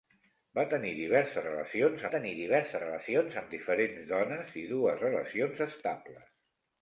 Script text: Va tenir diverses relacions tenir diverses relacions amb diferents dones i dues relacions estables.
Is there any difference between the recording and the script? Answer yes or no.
no